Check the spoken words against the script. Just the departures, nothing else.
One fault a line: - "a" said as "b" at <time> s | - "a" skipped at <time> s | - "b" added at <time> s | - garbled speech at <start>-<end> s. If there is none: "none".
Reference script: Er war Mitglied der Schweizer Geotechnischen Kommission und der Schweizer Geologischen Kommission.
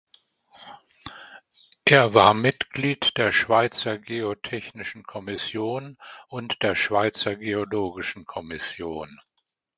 none